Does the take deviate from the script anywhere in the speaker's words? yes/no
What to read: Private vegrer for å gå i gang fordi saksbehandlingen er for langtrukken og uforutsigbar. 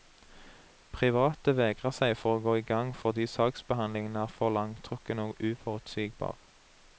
yes